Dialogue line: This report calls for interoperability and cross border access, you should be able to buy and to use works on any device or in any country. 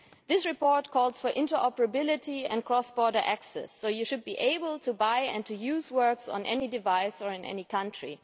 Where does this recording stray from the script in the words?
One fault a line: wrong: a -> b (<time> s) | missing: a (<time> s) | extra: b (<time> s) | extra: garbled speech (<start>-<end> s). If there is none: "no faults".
extra: so (3.7 s)